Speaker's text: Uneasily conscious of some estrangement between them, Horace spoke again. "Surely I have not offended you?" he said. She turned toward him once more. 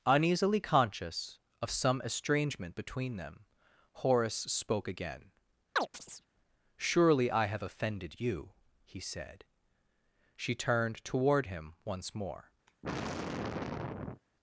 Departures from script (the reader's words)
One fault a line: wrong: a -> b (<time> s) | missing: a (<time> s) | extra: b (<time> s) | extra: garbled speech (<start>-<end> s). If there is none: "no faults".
missing: not (7.6 s)